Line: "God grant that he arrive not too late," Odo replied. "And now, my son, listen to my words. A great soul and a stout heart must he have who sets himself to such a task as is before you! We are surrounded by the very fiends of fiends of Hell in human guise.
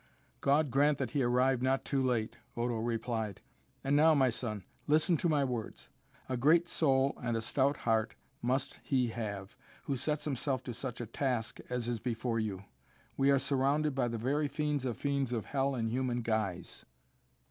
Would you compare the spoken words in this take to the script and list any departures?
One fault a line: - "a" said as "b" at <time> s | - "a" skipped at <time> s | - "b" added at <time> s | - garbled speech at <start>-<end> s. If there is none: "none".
none